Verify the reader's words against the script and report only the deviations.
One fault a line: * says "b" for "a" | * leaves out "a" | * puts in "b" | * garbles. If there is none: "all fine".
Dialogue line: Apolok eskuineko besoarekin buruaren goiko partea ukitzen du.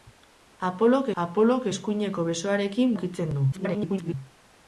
* puts in "apolok"
* leaves out "buruaren goiko partea"
* garbles